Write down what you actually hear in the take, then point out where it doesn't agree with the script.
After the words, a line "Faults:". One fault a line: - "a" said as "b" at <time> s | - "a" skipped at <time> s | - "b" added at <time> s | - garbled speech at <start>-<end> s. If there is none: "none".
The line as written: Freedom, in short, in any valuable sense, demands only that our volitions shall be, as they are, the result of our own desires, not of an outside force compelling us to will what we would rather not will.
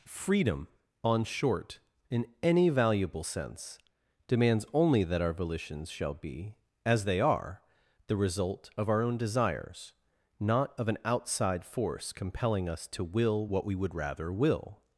Freedom, on short, in any valuable sense, demands only that our volitions shall be, as they are, the result of our own desires, not of an outside force compelling us to will what we would rather will.
Faults:
- "in" said as "on" at 1.0 s
- "not" skipped at 14.3 s